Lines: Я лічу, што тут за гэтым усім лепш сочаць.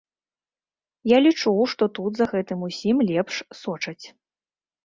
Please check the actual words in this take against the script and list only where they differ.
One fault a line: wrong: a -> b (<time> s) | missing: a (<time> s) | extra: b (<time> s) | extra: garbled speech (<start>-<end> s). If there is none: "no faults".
no faults